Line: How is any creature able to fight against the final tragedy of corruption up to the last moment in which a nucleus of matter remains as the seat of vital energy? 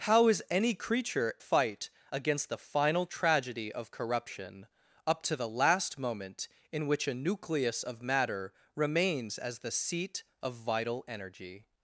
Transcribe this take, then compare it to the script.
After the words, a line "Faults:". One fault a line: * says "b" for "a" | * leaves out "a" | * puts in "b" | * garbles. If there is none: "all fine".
How is any creature fight against the final tragedy of corruption up to the last moment in which a nucleus of matter remains as the seat of vital energy?
Faults:
* leaves out "able to"